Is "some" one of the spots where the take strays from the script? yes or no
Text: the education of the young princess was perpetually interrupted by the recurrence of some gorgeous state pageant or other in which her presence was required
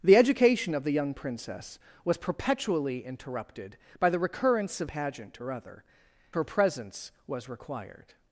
yes